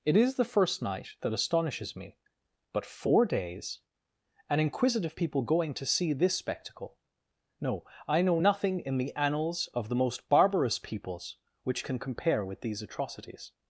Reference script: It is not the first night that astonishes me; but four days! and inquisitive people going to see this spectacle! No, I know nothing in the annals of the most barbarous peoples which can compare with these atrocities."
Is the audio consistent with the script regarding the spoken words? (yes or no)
no